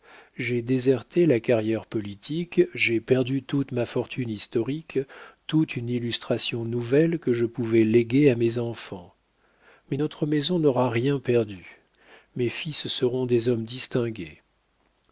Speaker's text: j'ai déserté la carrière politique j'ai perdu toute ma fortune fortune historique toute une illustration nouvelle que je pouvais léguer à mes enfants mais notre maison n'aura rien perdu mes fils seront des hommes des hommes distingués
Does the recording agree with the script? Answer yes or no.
no